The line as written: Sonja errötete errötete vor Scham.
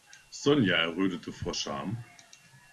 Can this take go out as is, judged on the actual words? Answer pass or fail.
fail